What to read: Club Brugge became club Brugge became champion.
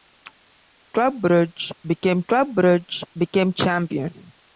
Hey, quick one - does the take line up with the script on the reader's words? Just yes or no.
yes